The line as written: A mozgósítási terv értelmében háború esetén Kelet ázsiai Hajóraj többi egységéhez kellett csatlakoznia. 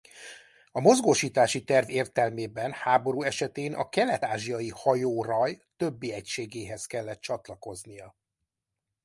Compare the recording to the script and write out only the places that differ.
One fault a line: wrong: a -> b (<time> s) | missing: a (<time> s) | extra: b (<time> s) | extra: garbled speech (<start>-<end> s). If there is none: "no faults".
extra: a (3.7 s)